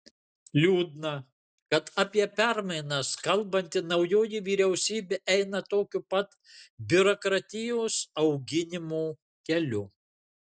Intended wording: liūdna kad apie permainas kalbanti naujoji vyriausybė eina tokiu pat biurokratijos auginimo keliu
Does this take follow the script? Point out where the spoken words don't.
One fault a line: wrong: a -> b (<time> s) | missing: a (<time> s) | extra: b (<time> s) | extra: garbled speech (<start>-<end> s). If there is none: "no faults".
no faults